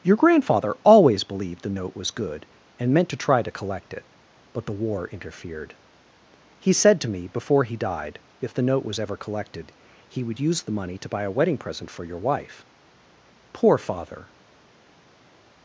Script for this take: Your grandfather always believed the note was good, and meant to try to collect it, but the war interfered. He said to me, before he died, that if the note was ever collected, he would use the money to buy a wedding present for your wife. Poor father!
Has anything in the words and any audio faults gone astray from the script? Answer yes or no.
yes